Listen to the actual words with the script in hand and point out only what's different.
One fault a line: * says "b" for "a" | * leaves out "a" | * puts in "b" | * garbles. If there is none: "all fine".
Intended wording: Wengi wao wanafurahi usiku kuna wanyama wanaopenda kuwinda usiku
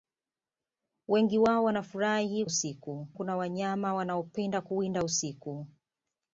all fine